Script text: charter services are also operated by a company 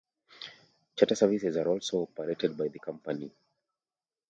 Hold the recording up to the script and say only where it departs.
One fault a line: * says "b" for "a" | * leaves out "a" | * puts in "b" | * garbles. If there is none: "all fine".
* says "the" for "a"